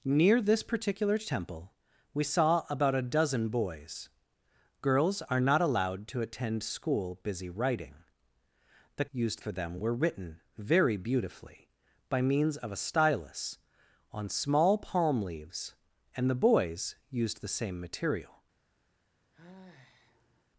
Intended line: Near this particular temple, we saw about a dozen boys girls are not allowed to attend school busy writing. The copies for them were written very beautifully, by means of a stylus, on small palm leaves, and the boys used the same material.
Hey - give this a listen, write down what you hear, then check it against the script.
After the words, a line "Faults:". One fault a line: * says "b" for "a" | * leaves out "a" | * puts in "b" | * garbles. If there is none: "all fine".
Near this particular temple, we saw about a dozen boys girls are not allowed to attend school busy writing. The used for them were written very beautifully, by means of a stylus, on small palm leaves, and the boys used the same material.
Faults:
* says "used" for "copies"